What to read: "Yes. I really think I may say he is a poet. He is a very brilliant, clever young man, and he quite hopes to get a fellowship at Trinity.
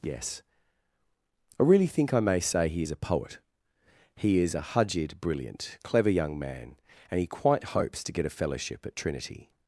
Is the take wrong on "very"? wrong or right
wrong